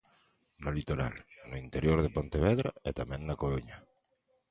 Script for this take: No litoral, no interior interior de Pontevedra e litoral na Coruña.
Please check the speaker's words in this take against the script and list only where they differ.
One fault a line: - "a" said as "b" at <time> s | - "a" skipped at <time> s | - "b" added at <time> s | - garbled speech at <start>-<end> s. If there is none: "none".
- "interior" skipped at 2.0 s
- "litoral" said as "tamén" at 3.0 s